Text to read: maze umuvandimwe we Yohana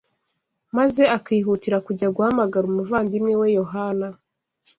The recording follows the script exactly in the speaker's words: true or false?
false